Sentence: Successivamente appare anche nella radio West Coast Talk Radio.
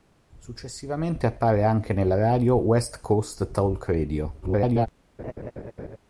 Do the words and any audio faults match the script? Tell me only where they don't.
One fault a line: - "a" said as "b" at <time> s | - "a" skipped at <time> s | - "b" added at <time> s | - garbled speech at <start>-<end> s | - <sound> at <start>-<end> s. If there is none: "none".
- garbled speech at 4.4-4.9 s
- laugh at 5.2-6.0 s